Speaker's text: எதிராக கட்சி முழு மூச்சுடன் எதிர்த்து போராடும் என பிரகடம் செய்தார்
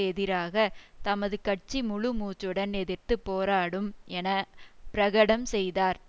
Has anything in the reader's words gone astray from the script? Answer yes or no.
yes